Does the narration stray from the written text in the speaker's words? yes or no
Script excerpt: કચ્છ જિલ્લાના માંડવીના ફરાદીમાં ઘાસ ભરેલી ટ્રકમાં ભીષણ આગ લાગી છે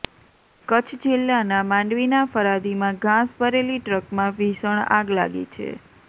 no